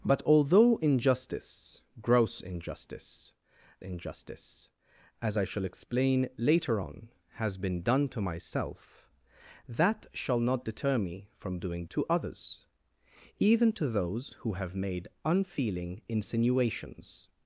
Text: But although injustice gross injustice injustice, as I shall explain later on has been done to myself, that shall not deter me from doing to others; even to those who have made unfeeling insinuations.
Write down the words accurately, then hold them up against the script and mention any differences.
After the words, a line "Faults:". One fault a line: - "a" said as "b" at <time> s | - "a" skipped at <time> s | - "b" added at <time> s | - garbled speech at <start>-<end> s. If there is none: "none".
But although injustice gross injustice injustice, as I shall explain later on has been done to myself, that shall not deter me from doing to others; even to those who have made unfeeling insinuations.
Faults:
none